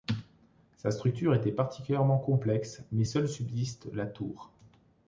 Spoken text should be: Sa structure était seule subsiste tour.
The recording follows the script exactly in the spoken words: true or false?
false